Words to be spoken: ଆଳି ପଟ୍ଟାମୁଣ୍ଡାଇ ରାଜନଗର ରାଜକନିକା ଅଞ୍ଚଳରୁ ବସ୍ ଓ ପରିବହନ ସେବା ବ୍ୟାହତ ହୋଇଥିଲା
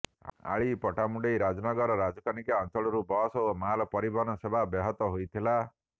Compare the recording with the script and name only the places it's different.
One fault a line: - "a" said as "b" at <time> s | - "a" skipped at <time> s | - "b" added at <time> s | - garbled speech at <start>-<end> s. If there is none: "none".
- "ମାଲ" added at 3.6 s